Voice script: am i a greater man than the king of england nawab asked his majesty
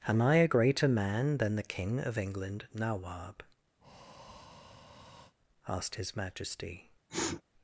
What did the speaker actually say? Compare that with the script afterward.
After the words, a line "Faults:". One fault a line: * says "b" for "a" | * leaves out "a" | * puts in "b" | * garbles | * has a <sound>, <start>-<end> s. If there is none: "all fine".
am i a greater man than the king of england nawab asked his majesty
Faults:
* has a breath, 3.8-5.3 s
* has a sniff, 7.1-7.4 s